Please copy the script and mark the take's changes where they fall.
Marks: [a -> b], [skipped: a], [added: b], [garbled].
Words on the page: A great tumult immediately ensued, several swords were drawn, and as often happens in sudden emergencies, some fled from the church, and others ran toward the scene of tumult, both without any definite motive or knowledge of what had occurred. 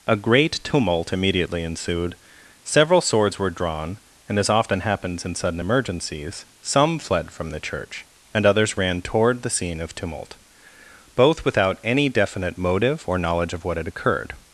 A great tumult immediately ensued, several swords were drawn, and as often happens in sudden emergencies, some fled from the church, and others ran toward the scene of tumult, both without any definite motive or knowledge of what had occurred.